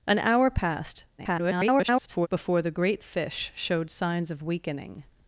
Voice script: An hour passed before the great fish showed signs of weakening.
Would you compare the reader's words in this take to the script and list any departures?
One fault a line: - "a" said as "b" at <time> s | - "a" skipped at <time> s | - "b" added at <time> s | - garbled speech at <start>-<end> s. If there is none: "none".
- garbled speech at 1.2-2.3 s